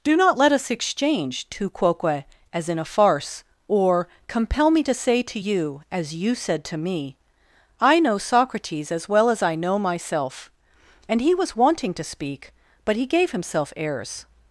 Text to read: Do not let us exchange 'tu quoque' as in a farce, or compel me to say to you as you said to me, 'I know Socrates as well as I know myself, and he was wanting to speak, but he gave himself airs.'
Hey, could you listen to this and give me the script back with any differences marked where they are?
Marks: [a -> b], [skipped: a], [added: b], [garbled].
Do not let us exchange 'tu quoque' as in a farce, or compel me to say to you as you said to me, 'I know Socrates as well as I know myself, and he was wanting to speak, but he gave himself airs.'